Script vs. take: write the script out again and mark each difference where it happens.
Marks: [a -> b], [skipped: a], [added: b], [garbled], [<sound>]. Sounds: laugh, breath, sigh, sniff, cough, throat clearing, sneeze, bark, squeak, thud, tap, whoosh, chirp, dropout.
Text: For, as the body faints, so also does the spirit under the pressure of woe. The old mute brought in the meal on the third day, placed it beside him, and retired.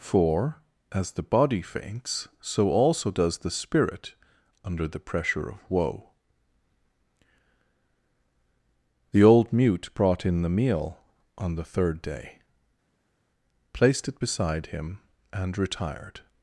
For, as the body faints, so also does the spirit under the pressure of woe. The old mute brought in the meal on the third day, placed it beside him, and retired.